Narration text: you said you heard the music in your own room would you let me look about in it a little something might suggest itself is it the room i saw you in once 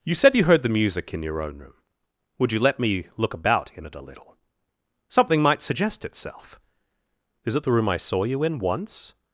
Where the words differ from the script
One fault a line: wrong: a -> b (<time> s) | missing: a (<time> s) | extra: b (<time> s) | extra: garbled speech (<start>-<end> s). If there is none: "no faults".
no faults